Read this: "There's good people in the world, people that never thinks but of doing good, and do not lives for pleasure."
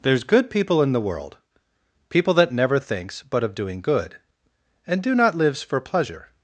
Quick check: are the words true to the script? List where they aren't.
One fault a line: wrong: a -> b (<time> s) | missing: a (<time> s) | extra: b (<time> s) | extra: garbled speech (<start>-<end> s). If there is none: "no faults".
no faults